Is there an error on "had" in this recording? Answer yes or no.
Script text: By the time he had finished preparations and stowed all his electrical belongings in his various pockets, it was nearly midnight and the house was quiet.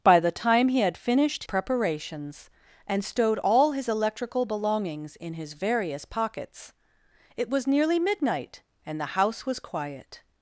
no